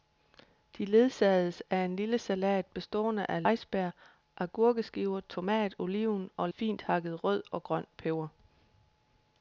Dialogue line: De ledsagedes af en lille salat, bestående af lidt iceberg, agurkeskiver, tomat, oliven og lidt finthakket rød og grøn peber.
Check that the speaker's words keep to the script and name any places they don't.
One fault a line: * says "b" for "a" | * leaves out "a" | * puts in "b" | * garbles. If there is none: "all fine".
* leaves out "lidt"
* leaves out "lidt"